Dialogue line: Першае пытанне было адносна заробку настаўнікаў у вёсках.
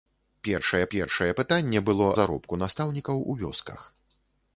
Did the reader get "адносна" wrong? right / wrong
wrong